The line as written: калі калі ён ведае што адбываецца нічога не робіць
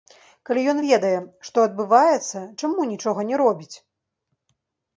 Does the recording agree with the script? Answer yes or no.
no